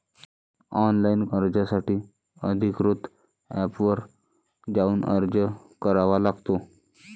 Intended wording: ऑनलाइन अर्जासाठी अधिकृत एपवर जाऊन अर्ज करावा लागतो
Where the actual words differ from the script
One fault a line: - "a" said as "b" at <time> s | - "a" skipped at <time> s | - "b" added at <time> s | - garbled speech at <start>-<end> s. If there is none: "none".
none